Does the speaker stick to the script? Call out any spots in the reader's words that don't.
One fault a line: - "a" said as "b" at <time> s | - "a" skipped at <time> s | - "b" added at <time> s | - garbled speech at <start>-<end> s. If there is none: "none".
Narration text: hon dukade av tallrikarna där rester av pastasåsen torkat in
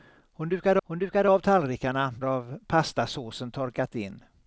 - "hon dukade" added at 0.8 s
- "där rester" skipped at 2.1 s